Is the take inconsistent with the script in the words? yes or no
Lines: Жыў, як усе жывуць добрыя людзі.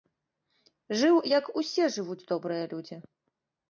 no